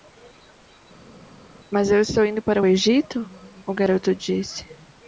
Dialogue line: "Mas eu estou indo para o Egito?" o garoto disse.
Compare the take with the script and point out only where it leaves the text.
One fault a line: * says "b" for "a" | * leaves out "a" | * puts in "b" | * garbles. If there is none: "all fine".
all fine